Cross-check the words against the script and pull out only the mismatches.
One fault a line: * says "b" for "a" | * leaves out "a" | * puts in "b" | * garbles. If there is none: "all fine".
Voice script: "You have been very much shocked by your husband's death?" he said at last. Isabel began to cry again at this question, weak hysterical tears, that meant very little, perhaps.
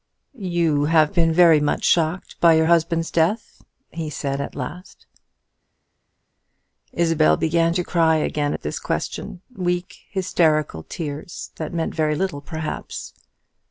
all fine